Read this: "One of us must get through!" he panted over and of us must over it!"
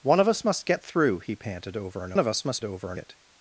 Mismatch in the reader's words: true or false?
false